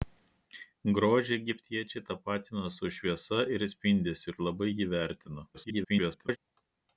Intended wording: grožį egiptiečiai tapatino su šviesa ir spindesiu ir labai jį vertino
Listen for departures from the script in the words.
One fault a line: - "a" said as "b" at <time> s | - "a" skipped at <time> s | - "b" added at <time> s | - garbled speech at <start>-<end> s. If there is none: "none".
- garbled speech at 5.5-6.4 s